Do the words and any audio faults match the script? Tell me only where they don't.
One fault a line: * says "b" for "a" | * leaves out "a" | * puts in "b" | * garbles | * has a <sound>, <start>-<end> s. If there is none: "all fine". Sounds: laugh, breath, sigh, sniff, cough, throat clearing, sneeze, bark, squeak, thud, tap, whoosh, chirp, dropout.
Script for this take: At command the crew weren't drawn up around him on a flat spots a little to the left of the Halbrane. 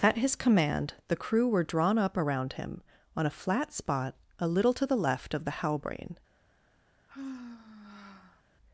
* puts in "his"
* says "were" for "weren't"
* says "spot" for "spots"
* has a sigh, 7.1-8.4 s